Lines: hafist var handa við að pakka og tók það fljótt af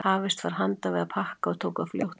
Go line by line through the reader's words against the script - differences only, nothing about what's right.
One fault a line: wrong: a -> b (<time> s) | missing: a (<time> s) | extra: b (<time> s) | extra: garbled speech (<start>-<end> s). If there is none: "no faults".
no faults